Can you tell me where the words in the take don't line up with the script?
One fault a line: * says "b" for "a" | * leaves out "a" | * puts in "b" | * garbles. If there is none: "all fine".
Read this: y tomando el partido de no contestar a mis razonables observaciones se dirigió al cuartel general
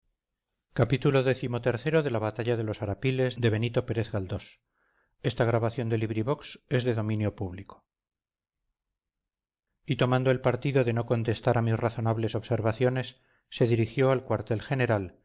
all fine